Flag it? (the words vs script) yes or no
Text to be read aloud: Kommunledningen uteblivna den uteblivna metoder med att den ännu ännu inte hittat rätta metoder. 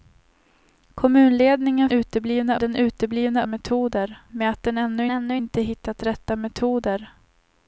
no